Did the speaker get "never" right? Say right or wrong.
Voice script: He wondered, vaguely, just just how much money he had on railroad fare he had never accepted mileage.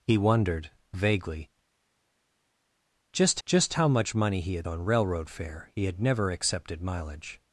right